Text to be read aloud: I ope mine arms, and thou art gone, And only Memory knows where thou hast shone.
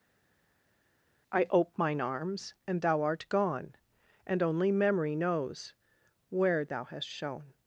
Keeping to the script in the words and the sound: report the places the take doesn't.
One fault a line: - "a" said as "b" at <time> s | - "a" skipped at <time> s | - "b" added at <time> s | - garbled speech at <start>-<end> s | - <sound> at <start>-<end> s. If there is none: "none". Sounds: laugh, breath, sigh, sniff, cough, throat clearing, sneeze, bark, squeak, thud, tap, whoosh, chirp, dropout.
none